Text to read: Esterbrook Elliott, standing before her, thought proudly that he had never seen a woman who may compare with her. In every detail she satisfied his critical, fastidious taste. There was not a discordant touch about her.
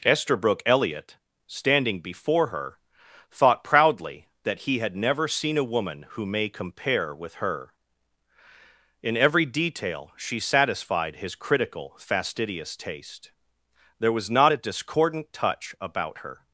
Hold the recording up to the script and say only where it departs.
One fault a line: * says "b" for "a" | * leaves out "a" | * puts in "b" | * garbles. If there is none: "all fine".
all fine